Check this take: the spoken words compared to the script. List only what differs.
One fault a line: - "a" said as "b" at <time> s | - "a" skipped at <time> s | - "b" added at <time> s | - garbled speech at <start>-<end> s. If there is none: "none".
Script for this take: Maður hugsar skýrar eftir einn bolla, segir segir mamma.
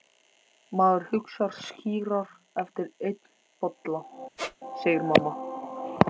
- "segir" skipped at 5.1 s